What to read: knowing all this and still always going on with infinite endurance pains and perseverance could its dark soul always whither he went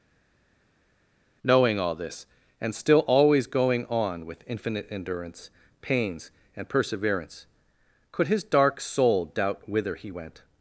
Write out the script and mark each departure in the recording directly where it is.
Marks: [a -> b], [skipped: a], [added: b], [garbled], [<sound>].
knowing all this and still always going on with infinite endurance pains and perseverance could [its -> his] dark soul [always -> doubt] whither he went